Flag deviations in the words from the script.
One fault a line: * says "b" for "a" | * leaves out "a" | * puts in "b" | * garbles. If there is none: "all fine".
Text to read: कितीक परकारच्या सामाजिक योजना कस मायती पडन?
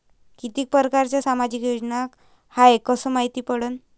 * puts in "हाय"